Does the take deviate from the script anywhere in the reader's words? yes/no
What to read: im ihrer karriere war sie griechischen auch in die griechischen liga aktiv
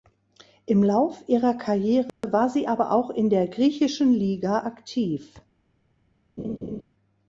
yes